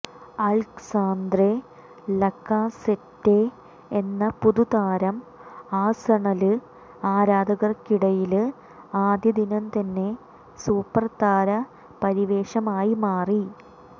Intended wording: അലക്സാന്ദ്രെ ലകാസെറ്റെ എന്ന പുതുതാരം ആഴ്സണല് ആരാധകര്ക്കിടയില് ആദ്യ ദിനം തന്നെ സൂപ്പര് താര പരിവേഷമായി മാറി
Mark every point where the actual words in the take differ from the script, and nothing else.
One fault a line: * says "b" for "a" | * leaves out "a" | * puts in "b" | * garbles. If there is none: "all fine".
all fine